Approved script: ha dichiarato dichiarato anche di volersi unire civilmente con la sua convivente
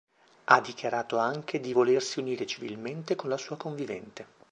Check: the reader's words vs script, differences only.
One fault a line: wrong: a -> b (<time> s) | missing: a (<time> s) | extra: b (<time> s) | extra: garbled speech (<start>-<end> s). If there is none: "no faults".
missing: dichiarato (1.2 s)